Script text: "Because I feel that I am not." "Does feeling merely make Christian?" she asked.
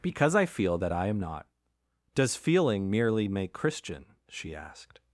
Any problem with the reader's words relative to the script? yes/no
no